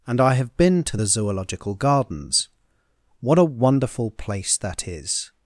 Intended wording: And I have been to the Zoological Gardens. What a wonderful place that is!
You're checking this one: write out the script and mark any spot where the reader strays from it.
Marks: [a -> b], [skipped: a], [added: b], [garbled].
And I have been to the Zoological Gardens. What a wonderful place that is!